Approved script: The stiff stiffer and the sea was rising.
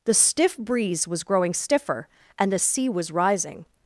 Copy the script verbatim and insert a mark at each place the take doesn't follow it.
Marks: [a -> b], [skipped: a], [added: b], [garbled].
The stiff [added: breeze was growing] stiffer and the sea was rising.